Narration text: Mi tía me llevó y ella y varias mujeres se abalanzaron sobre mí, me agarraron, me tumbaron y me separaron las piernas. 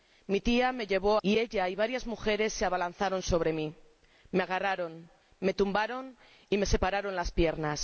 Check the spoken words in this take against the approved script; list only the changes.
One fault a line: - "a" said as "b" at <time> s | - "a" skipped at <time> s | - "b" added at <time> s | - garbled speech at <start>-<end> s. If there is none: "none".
none